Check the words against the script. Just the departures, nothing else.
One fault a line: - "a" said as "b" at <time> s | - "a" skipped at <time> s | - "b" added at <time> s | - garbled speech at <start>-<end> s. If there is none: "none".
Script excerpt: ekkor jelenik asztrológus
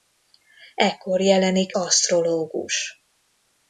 none